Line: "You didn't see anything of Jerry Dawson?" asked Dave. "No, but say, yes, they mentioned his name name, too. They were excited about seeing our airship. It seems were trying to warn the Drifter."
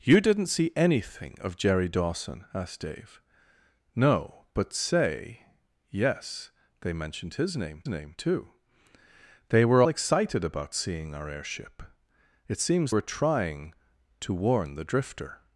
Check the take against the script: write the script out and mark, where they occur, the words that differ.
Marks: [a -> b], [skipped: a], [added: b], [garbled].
"You didn't see anything of Jerry Dawson?" asked Dave. "No, but say, yes, they mentioned his name name, too. They were excited about seeing our airship. It seems were trying to warn the Drifter."